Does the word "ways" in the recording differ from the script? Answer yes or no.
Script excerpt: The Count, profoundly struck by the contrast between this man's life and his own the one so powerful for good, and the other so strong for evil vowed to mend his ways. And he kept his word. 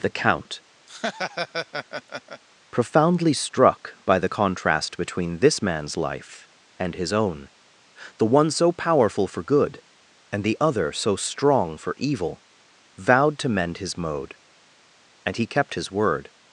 yes